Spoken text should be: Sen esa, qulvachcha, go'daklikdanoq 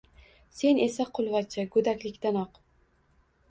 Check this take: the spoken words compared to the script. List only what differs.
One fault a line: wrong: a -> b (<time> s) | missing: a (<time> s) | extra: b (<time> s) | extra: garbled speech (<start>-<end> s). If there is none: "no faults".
no faults